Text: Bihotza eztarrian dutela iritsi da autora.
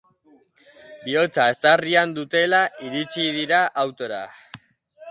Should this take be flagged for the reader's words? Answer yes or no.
yes